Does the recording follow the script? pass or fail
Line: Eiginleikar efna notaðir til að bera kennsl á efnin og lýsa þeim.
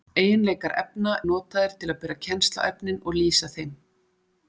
pass